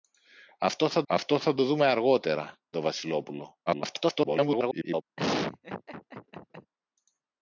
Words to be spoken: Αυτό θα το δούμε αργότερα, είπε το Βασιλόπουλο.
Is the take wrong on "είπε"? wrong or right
wrong